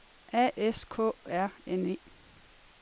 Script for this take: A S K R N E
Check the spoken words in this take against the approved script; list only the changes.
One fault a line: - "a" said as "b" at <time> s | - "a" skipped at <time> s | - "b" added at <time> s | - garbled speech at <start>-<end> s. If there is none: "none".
none